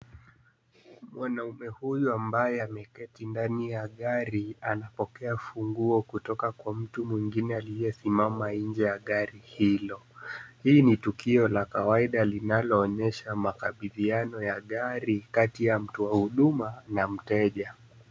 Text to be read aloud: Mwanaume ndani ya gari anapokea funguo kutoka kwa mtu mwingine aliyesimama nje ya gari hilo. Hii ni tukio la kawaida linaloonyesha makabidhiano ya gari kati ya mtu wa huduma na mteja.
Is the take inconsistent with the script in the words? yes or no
yes